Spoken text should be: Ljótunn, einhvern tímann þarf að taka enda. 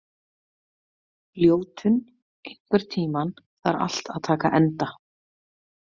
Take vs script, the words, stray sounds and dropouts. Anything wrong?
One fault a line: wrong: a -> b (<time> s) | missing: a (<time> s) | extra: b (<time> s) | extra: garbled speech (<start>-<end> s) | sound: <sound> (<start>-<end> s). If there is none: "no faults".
extra: allt (3.9 s)